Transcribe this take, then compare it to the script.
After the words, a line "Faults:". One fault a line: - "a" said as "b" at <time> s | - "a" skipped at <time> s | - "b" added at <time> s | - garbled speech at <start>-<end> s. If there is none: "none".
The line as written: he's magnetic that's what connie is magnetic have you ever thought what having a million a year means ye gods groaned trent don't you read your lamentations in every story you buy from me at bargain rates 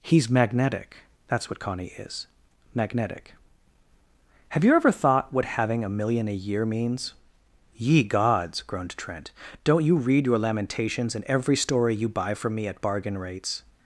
he's magnetic that's what connie is magnetic have you ever thought what having a million a year means ye gods groaned trent don't you read your lamentations in every story you buy from me at bargain rates
Faults:
none